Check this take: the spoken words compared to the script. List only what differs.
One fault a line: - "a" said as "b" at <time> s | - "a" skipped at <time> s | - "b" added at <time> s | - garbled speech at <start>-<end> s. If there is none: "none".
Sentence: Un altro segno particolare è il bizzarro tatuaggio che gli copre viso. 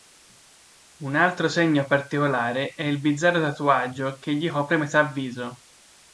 - "metà" added at 4.8 s